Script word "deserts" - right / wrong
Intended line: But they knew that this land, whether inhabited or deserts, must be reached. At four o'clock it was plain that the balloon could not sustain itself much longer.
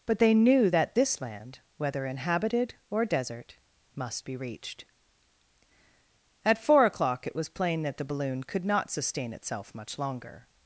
wrong